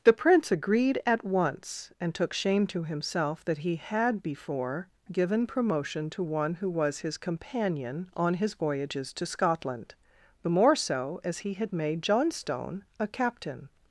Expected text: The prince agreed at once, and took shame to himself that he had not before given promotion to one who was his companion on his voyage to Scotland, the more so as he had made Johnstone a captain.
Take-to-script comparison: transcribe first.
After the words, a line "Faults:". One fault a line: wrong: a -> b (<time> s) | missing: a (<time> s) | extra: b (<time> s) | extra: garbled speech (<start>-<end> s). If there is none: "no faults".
The prince agreed at once, and took shame to himself that he had before given promotion to one who was his companion on his voyages to Scotland, the more so as he had made Johnstone a captain.
Faults:
missing: not (4.2 s)
wrong: voyage -> voyages (8.6 s)